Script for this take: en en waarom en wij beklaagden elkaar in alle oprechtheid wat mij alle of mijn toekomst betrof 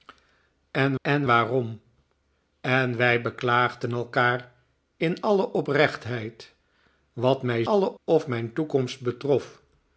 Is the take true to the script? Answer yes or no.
yes